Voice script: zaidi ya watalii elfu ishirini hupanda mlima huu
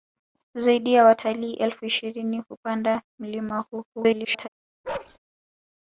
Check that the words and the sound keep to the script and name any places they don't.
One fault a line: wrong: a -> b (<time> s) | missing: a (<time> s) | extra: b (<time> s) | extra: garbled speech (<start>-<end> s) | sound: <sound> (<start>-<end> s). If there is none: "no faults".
extra: garbled speech (3.9-4.5 s)
sound: bark (4.8-5.2 s)